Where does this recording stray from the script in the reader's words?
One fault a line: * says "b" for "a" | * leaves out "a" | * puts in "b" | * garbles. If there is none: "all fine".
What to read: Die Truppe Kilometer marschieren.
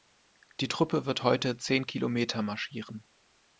* puts in "wird heute zehn"